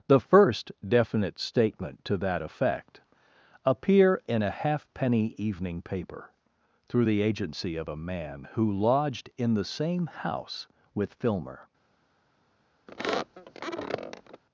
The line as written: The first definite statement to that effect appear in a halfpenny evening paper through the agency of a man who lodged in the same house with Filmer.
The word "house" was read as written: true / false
true